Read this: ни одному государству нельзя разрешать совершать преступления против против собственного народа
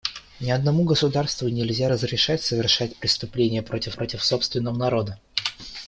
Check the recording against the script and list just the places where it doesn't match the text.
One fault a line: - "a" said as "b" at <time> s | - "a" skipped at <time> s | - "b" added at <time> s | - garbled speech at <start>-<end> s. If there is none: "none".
none